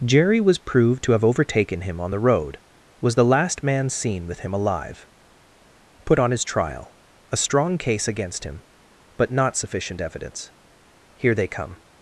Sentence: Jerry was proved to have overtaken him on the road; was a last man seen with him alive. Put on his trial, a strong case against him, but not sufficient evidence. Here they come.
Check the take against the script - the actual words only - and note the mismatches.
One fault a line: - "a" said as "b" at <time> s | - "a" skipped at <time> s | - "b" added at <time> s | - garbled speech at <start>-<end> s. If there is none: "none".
- "a" said as "the" at 3.2 s